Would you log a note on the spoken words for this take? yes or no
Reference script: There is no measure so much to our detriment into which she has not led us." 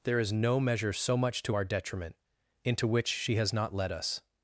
no